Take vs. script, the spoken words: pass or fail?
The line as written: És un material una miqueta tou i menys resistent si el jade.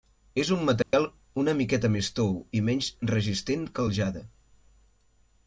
fail